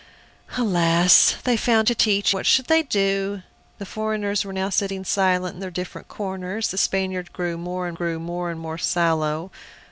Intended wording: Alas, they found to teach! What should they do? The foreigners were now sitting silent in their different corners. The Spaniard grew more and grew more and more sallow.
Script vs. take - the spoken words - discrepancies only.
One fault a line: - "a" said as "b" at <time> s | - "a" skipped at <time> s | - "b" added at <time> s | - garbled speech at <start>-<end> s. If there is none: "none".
none